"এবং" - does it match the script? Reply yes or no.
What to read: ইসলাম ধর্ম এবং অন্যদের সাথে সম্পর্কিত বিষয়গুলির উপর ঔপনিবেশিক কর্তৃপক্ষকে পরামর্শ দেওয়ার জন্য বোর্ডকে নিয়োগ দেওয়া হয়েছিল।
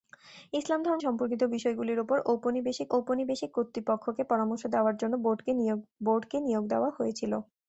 no